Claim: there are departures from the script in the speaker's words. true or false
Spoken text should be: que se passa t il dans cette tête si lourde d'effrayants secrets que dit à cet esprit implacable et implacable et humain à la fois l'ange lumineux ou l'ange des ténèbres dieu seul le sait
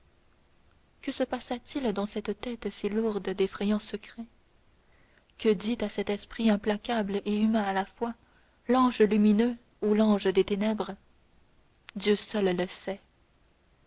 true